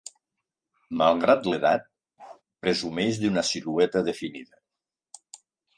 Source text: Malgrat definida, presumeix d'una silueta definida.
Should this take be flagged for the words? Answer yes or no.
yes